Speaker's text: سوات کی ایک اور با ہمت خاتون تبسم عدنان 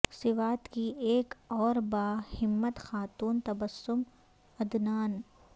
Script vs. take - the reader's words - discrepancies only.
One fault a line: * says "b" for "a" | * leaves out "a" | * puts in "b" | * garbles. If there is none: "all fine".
all fine